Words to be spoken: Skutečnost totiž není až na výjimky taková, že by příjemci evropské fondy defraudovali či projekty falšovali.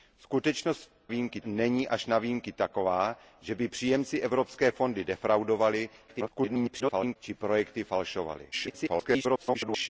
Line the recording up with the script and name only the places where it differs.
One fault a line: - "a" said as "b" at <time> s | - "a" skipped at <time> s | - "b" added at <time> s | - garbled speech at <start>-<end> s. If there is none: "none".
- "totiž" said as "výjimky" at 1.1 s
- garbled speech at 6.1-7.2 s
- garbled speech at 8.5-9.9 s